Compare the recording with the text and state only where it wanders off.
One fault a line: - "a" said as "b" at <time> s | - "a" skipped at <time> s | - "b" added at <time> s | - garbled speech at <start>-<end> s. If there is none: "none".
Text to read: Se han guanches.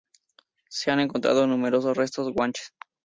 - "encontrado numerosos restos" added at 1.0 s